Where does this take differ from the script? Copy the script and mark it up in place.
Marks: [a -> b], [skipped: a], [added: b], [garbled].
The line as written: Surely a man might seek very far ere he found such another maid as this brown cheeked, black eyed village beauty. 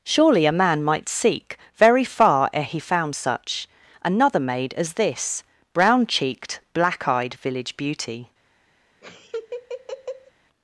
Surely a man might seek very far ere he found such another maid as this brown cheeked, black eyed village beauty.